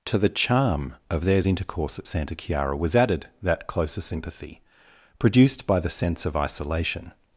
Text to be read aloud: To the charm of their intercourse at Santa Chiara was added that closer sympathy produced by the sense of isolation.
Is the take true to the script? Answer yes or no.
no